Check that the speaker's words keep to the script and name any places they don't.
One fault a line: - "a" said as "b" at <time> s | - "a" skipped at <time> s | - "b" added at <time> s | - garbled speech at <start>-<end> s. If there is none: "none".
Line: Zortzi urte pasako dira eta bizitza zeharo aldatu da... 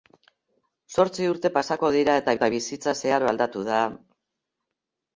- "eta" added at 2.4 s